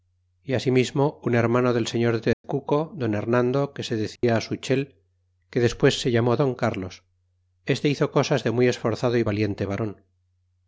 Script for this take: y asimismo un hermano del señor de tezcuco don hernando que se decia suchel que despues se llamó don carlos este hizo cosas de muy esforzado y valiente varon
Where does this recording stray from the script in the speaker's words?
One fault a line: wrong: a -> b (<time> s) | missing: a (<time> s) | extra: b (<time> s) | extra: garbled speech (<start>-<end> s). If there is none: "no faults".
no faults